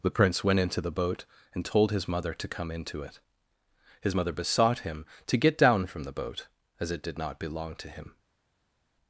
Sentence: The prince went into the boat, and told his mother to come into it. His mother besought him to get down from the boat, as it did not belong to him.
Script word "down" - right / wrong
right